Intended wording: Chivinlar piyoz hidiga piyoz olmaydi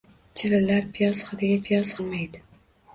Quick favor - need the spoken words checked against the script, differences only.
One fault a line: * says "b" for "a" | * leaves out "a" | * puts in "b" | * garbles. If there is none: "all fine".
all fine